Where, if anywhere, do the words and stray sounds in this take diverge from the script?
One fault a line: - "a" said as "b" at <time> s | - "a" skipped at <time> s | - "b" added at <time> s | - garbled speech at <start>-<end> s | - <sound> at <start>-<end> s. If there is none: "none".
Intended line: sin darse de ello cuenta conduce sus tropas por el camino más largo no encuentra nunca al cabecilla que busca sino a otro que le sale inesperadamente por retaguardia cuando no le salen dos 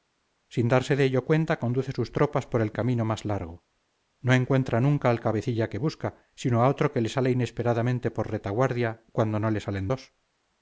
none